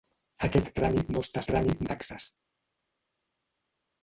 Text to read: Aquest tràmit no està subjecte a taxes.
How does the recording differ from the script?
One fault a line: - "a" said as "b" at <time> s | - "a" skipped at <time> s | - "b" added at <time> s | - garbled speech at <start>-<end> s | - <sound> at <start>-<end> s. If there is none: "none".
- "subjecte" said as "tràmit" at 1.5 s